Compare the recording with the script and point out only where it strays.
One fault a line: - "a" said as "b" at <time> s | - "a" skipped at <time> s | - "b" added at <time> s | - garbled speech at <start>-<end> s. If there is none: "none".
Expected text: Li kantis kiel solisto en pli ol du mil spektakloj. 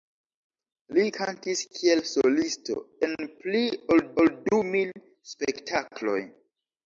- "ol" added at 4.2 s